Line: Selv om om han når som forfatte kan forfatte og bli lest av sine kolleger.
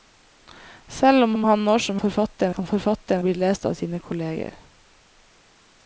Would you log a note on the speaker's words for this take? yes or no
no